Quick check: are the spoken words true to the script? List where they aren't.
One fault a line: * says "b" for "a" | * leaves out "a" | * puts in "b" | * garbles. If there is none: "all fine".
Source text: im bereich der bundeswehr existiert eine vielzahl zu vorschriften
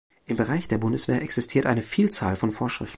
* says "von" for "zu"